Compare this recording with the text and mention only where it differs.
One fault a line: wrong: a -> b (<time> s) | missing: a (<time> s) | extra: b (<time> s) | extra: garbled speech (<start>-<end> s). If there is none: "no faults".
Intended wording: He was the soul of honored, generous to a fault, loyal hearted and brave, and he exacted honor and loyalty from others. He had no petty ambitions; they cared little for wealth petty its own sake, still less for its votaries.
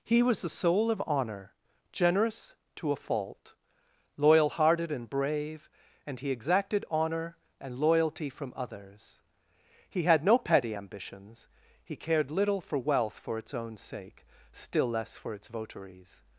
wrong: honored -> honor (1.1 s)
wrong: they -> he (11.8 s)
wrong: petty -> for (13.2 s)